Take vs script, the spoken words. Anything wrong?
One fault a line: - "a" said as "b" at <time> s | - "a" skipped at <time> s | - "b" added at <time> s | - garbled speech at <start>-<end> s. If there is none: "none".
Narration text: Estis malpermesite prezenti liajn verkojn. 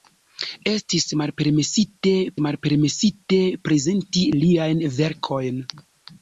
- "malpermesite" added at 2.5 s